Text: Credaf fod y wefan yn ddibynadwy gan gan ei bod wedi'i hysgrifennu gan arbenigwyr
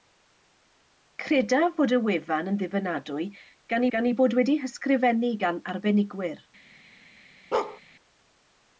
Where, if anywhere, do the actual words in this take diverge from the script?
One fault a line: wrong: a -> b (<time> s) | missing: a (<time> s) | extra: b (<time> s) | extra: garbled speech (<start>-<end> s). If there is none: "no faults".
no faults